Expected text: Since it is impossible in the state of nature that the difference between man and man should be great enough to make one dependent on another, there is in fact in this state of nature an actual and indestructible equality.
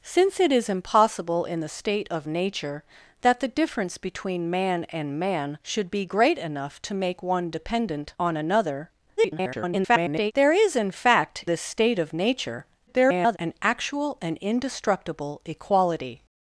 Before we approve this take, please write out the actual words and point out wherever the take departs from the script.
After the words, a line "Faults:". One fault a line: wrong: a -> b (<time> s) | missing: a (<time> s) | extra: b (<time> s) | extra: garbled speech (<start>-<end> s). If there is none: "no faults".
Since it is impossible in the state of nature that the difference between man and man should be great enough to make one dependent on another, [garbled] there is in fact this state of nature [garbled] an actual and indestructible equality.
Faults:
extra: garbled speech (9.2-10.3 s)
missing: in (11.5 s)
extra: garbled speech (12.9-13.4 s)